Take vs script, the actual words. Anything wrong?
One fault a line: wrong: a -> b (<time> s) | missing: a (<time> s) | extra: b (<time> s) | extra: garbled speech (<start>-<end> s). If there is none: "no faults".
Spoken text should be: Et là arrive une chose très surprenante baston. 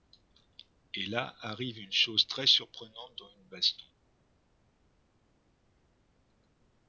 extra: dans une (3.2 s)